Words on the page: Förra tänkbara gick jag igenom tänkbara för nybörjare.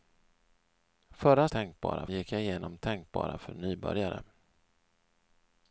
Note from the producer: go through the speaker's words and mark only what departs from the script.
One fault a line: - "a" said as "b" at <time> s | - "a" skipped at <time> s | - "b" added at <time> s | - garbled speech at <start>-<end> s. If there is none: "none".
none